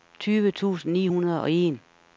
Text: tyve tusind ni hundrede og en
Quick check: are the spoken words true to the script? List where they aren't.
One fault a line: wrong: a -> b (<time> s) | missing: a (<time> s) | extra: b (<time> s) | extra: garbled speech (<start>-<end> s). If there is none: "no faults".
no faults